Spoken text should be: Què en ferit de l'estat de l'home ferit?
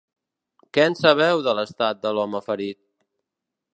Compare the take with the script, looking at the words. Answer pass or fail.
fail